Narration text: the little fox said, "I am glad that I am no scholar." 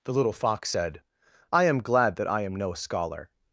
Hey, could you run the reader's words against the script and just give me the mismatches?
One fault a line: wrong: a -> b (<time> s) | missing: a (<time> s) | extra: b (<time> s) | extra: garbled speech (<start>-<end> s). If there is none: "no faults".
no faults